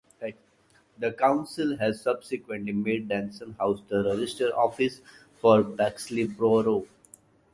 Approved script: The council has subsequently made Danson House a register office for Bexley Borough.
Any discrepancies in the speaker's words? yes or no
yes